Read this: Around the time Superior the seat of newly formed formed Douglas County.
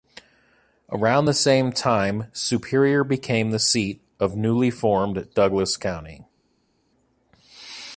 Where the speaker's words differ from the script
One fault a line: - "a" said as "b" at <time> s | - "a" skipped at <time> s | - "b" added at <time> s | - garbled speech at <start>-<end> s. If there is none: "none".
- "same" added at 1.3 s
- "became" added at 3.0 s
- "formed" skipped at 5.3 s